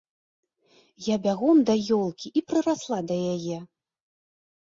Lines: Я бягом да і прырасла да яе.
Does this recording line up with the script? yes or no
no